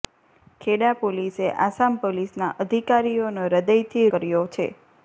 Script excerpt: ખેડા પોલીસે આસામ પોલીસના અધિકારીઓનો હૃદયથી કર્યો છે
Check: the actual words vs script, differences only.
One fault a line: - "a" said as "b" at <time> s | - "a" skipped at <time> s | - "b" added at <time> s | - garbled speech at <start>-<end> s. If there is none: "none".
none